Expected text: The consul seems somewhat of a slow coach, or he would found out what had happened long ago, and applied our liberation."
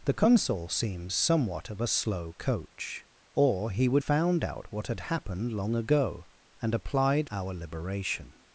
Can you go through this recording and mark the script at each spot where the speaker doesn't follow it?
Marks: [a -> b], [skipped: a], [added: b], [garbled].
The consul seems somewhat of a slow coach, or he would found out what had happened long ago, and applied our liberation."